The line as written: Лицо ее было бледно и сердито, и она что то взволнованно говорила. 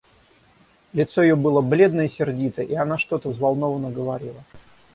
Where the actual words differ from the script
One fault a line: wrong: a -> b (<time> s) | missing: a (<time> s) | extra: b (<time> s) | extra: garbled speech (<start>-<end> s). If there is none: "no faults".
no faults